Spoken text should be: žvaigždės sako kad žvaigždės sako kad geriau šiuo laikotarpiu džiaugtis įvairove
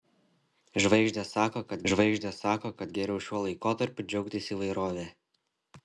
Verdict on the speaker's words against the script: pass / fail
pass